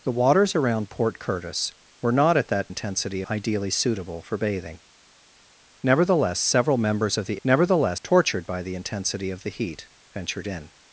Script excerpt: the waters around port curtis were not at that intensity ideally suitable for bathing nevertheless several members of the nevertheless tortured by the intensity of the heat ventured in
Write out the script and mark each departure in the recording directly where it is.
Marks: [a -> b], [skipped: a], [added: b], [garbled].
the waters around port curtis were not at that intensity ideally suitable for bathing nevertheless several members of the nevertheless tortured by the intensity of the heat ventured in